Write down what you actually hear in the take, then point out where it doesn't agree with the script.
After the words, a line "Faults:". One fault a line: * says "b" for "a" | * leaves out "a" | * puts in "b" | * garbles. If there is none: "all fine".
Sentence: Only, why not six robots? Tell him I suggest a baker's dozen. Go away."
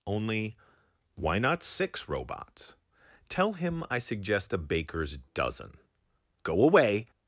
Only, why not six robots? Tell him I suggest a baker's dozen. Go away."
Faults:
all fine